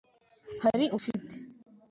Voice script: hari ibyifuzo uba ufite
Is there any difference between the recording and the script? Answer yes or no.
yes